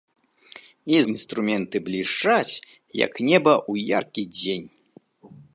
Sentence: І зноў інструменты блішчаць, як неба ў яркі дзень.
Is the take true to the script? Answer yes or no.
no